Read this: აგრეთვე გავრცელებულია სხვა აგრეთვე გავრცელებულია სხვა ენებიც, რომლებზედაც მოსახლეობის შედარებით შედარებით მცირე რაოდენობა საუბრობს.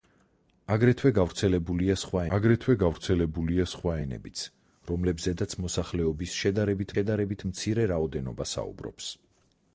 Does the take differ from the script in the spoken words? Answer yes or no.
no